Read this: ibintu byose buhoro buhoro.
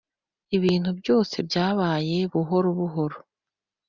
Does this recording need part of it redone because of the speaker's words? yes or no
yes